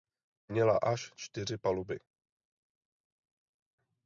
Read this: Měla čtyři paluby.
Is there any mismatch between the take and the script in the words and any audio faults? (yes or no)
yes